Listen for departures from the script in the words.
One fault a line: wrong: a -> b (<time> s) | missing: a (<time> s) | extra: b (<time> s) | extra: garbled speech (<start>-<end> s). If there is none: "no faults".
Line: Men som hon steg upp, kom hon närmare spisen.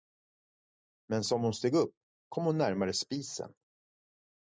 no faults